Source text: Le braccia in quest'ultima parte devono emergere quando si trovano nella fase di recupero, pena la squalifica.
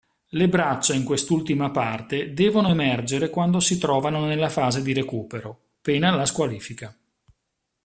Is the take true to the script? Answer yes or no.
yes